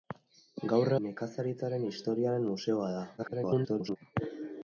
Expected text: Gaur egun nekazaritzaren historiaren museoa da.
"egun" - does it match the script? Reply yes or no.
no